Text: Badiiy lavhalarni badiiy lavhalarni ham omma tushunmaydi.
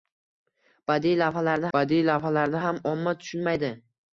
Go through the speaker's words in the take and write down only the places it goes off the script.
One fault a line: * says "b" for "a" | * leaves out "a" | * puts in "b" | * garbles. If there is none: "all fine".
all fine